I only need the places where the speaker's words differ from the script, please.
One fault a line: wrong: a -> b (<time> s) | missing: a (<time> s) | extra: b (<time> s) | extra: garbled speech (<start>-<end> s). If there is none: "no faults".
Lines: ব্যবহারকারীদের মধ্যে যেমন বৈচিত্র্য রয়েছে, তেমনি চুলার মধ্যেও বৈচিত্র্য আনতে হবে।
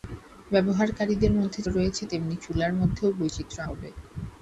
missing: যেমন বৈচিত্র্য (1.6 s)
missing: আনতে (3.6 s)